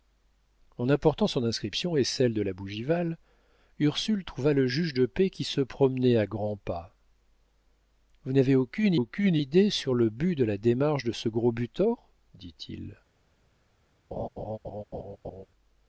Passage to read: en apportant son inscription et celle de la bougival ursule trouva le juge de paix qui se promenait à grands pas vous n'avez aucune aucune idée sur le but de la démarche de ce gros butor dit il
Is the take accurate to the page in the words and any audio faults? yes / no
no